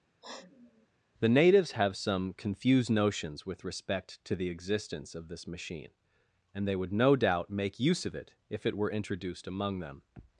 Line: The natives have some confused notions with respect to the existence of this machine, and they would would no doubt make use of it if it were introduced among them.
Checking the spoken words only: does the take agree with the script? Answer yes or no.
no